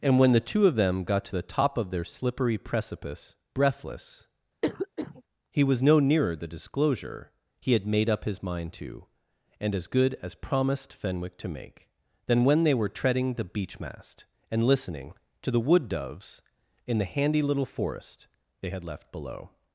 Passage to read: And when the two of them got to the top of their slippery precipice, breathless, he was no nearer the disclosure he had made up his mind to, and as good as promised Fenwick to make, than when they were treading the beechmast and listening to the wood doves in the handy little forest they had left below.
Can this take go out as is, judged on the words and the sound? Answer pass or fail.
fail